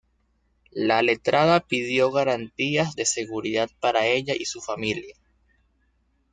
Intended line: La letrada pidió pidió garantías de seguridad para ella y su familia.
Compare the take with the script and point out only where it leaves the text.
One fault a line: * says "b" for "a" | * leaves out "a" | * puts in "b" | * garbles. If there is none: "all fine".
* leaves out "pidió"